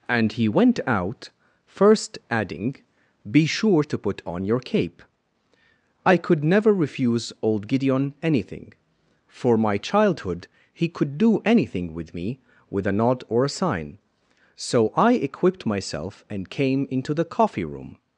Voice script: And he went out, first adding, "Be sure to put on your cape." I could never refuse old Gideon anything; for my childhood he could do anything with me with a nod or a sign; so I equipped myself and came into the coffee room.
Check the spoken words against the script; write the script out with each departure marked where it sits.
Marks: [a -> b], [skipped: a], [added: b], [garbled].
And he went out, first adding, "Be sure to put on your cape." I could never refuse old Gideon anything; for my childhood he could do anything with me with a nod or a sign; so I equipped myself and came into the coffee room.